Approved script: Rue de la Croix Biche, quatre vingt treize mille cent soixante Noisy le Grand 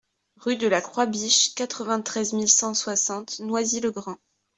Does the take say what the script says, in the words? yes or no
yes